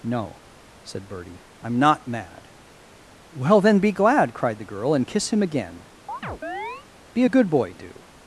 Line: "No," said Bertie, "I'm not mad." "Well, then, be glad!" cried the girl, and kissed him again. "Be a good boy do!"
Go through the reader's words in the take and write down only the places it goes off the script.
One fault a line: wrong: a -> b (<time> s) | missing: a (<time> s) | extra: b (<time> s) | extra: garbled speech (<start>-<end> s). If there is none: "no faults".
wrong: kissed -> kiss (5.1 s)